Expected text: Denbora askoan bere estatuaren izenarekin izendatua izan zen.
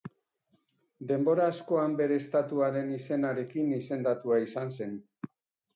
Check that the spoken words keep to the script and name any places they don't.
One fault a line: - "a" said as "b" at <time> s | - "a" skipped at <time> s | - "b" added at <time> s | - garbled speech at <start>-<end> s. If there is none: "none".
none